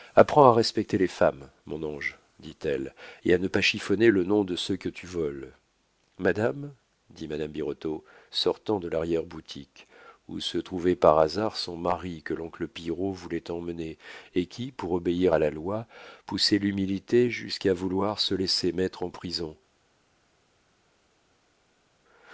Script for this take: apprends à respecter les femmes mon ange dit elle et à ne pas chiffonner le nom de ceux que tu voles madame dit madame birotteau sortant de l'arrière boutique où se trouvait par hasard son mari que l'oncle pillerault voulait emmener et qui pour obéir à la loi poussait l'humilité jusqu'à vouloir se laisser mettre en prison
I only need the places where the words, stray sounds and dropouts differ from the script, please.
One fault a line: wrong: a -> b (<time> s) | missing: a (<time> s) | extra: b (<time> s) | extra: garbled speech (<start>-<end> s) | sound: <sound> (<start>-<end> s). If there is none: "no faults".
no faults